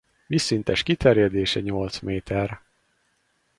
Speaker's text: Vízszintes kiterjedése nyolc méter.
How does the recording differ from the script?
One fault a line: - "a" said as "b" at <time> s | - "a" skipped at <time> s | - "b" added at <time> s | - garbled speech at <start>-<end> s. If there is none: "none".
none